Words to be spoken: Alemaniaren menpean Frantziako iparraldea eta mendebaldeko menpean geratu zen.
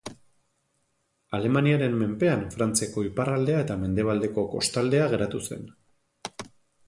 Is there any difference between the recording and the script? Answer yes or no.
yes